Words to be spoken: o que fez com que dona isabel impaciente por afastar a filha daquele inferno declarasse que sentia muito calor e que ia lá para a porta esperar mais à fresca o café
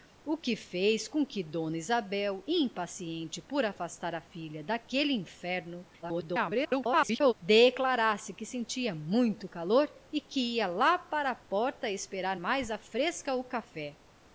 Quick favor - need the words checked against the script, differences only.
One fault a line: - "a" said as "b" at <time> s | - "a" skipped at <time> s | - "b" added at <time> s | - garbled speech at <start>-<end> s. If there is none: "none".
- garbled speech at 6.0-7.3 s